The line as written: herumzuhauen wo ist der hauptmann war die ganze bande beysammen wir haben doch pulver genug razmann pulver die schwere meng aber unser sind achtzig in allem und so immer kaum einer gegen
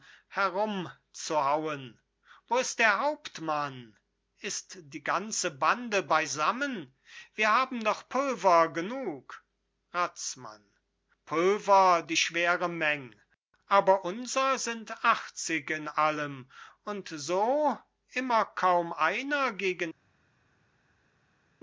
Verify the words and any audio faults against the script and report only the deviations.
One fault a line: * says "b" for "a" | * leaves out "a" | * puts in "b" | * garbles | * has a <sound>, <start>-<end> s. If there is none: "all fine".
* says "ist" for "war"